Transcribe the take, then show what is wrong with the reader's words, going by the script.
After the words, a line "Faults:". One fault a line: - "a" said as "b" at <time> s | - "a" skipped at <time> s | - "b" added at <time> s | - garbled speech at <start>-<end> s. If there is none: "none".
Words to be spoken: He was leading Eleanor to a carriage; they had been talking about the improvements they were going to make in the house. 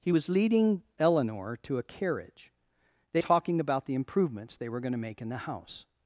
He was leading Eleanor to a carriage; they talking about the improvements they were going to make in the house.
Faults:
- "had been" skipped at 3.2 s